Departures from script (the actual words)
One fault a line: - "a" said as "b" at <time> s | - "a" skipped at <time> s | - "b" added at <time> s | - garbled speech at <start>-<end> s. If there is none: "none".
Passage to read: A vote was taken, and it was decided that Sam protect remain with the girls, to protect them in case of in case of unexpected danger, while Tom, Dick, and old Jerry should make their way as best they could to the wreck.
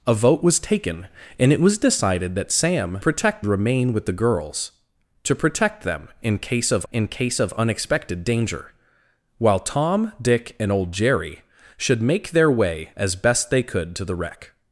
none